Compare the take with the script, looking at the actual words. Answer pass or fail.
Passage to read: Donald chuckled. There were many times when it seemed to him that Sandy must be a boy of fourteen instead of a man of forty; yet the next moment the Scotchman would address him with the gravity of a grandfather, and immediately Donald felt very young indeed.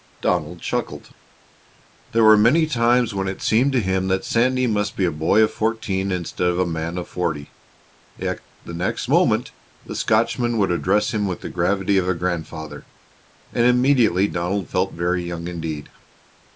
pass